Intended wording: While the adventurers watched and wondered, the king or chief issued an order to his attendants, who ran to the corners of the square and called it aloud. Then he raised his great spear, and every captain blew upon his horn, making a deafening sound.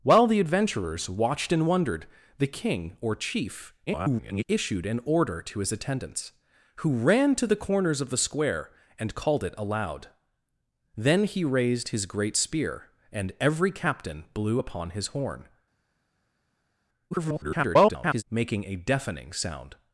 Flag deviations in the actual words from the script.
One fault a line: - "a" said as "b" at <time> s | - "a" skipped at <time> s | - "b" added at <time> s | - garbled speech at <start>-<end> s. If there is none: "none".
- garbled speech at 3.9-4.4 s
- garbled speech at 17.1-18.2 s